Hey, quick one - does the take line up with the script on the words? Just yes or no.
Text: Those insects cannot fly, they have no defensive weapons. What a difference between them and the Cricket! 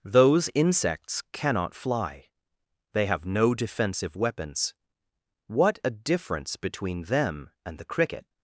yes